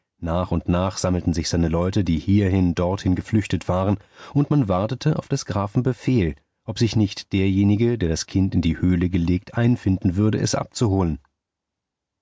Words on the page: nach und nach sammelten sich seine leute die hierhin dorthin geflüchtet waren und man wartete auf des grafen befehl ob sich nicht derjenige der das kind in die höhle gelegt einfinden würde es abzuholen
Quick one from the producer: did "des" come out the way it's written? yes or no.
yes